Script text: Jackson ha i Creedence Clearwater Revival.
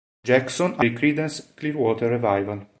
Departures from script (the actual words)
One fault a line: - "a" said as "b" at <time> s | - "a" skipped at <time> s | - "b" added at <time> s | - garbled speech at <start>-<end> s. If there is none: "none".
none